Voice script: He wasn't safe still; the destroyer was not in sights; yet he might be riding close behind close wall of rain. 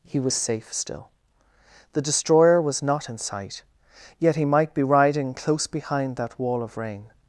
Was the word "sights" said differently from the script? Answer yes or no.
yes